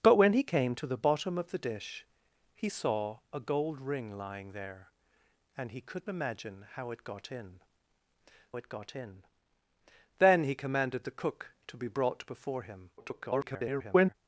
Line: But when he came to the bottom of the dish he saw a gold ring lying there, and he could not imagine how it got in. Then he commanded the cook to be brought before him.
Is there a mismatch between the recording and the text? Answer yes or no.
yes